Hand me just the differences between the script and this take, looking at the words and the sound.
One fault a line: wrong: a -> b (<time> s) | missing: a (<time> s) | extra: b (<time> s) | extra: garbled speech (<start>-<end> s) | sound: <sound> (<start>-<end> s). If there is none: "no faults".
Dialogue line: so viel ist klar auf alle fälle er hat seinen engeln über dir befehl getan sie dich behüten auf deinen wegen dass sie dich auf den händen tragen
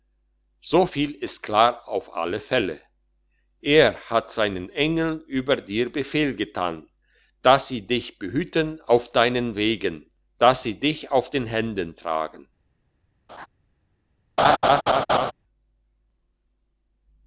extra: dass (7.4 s)
sound: laugh (13.3-13.5 s)
sound: laugh (14.4-15.3 s)